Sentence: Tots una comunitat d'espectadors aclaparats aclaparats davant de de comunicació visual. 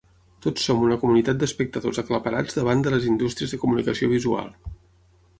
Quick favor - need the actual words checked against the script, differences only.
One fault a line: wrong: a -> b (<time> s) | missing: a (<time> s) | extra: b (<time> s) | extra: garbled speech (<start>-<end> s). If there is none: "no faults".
extra: som (0.7 s)
missing: aclaparats (2.6 s)
extra: les indústries (2.9 s)